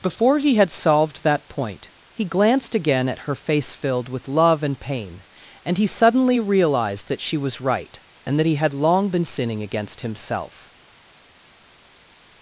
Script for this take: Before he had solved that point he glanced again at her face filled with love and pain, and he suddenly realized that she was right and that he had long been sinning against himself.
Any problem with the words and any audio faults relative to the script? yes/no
no